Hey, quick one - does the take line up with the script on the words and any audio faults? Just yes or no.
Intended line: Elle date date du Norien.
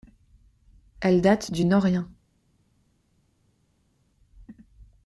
no